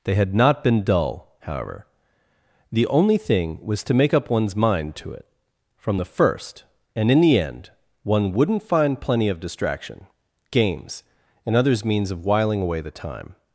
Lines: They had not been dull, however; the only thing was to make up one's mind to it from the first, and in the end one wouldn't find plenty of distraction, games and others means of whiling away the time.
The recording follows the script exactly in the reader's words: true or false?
true